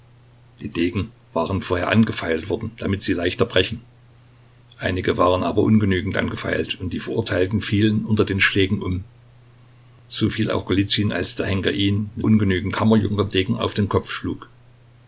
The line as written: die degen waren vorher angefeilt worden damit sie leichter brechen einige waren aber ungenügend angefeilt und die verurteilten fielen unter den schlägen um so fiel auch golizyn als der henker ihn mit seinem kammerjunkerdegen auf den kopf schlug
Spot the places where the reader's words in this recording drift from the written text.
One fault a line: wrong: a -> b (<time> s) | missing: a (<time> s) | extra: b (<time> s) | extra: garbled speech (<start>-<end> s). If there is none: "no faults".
wrong: seinem -> ungenügend (12.2 s)